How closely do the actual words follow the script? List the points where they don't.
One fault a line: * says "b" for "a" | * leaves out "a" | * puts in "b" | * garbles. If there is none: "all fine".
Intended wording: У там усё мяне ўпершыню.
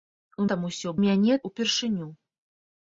all fine